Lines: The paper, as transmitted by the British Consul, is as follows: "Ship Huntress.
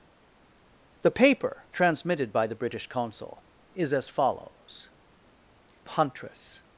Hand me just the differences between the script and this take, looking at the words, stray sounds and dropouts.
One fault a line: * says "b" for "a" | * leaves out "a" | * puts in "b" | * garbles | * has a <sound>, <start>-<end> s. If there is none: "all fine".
* leaves out "as"
* leaves out "Ship"